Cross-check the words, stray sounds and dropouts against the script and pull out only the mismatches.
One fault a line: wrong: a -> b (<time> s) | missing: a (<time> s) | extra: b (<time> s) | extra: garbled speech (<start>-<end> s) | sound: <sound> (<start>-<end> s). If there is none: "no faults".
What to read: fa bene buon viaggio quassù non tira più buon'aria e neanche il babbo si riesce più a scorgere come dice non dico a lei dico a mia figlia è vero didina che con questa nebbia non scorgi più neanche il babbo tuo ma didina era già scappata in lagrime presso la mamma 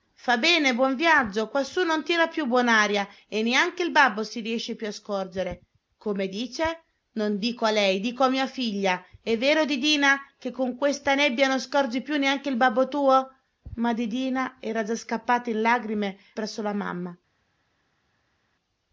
no faults